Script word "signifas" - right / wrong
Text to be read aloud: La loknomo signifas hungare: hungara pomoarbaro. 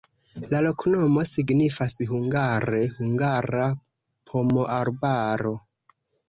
right